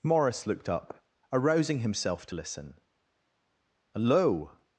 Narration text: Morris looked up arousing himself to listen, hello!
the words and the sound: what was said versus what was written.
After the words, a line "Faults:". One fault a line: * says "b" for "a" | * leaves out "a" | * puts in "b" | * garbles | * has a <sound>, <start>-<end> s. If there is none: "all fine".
Morris looked up arousing himself to listen, hello!
Faults:
all fine